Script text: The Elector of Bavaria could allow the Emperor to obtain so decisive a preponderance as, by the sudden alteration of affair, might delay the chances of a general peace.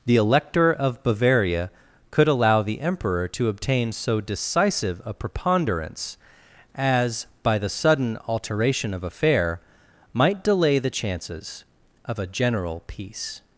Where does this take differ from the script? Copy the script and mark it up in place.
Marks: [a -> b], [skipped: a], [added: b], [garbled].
The Elector of Bavaria could allow the Emperor to obtain so decisive a preponderance as, by the sudden alteration of affair, might delay the chances of a general peace.